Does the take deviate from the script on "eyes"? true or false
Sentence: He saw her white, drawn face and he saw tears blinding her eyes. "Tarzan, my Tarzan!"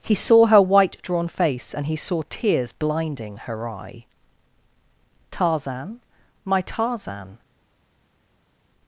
true